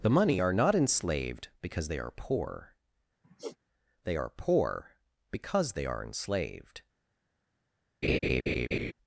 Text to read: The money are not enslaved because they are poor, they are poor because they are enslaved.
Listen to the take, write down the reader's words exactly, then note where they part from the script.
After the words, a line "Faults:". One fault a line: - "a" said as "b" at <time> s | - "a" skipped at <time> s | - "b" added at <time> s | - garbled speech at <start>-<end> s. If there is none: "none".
The money are not enslaved because they are poor, they are poor because they are enslaved.
Faults:
none